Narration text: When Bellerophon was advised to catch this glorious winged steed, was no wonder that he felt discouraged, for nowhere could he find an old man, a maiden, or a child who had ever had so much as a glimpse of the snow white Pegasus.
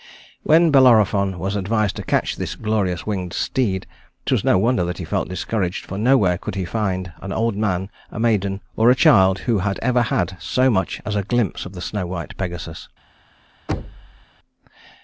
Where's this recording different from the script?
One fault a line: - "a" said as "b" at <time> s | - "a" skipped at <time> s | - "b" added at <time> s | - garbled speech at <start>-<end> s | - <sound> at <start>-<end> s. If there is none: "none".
- thud at 13.7-14.3 s